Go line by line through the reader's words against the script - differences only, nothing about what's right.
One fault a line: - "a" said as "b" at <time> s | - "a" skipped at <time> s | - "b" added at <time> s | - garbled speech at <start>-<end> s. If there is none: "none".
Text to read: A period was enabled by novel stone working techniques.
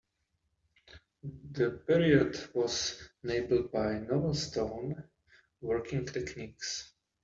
- "A" said as "The" at 1.5 s